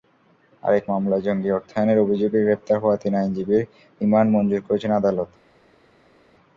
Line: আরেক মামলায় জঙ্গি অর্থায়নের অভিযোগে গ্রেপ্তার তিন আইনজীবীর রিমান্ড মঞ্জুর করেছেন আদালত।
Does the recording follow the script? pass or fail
fail